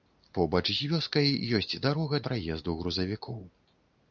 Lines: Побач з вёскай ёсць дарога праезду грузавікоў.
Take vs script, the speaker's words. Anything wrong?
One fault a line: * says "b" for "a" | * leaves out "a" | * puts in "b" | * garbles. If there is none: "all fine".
all fine